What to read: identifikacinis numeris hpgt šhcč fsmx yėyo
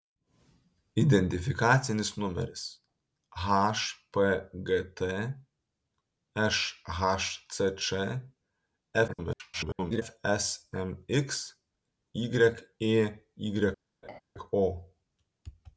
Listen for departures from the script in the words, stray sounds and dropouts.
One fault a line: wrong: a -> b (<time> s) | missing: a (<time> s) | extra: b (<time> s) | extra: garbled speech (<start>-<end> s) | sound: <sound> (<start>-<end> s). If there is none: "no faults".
extra: garbled speech (9.1-10.0 s)
sound: laugh (14.0-14.2 s)